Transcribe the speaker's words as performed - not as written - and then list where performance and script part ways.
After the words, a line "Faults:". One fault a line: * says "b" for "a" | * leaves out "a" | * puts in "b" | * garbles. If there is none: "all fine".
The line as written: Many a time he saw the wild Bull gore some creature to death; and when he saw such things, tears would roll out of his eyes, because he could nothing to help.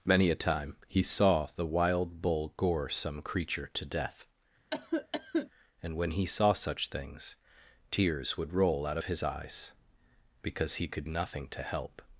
Many a time he saw the wild Bull gore some creature to death; and when he saw such things, tears would roll out of his eyes, because he could nothing to help.
Faults:
all fine